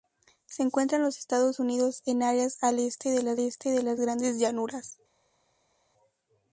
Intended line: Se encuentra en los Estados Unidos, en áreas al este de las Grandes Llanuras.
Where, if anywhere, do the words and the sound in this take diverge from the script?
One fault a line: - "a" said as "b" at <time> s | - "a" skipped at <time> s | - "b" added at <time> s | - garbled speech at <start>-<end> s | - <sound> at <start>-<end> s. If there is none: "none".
- "este de las" added at 3.4 s